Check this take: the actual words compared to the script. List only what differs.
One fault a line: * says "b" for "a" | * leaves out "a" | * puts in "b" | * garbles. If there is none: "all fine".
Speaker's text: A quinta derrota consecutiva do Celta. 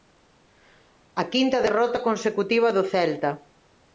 all fine